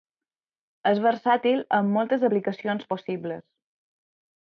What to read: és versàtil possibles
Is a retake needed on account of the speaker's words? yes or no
yes